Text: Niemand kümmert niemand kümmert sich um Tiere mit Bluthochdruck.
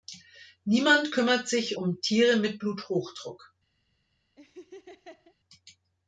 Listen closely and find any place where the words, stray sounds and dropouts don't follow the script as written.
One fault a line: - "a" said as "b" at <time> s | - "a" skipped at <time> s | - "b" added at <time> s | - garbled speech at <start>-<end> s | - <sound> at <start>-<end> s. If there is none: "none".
- "niemand kümmert" skipped at 1.5 s
- laugh at 4.4-5.4 s